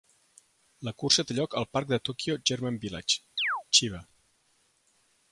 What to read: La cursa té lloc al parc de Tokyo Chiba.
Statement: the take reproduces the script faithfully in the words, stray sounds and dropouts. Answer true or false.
false